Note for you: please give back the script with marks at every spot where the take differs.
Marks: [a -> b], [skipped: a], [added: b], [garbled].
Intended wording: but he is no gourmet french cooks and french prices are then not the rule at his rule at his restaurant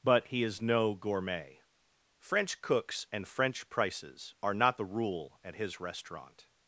but he is no gourmet french cooks and french prices are [skipped: then] not the rule at his [skipped: rule at his] restaurant